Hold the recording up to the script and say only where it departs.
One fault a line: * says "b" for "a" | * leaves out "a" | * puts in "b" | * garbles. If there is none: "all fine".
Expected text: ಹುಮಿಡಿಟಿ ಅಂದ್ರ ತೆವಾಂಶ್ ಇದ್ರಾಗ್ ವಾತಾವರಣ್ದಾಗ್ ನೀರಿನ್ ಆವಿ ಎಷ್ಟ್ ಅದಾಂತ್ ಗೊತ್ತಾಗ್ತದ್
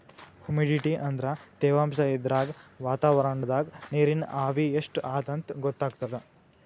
all fine